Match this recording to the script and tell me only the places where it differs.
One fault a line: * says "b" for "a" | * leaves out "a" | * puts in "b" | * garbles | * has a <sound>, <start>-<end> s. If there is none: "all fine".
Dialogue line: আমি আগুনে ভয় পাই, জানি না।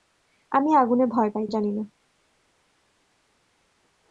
all fine